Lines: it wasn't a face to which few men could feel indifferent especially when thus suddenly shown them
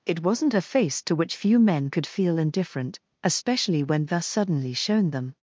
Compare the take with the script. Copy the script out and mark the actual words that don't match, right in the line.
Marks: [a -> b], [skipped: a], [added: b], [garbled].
it wasn't a face to which few men could feel indifferent especially when thus suddenly shown them